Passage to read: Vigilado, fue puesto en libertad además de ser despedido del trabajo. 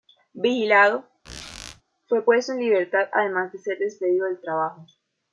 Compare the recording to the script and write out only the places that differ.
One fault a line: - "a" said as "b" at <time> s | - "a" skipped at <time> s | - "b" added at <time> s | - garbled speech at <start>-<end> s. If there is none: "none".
none